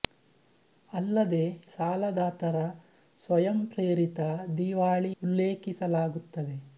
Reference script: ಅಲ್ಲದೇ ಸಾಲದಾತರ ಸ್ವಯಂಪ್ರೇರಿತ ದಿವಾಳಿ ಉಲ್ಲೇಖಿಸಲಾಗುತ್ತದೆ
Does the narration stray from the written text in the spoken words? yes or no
no